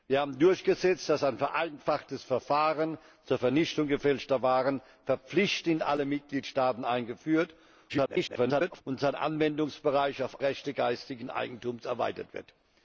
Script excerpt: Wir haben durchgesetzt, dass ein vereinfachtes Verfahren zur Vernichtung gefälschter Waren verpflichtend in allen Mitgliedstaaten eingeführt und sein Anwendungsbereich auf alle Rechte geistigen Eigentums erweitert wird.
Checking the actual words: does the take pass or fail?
fail